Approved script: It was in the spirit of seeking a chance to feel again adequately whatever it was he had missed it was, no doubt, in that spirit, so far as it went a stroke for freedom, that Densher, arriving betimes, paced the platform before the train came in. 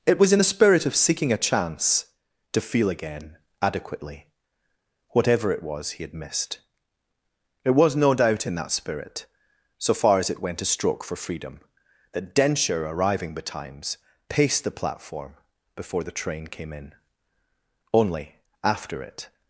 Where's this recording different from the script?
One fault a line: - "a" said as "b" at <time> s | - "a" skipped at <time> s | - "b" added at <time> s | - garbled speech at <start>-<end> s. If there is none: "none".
- "Only after it" added at 17.9 s